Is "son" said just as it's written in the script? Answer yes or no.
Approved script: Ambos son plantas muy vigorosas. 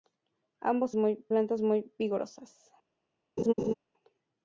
no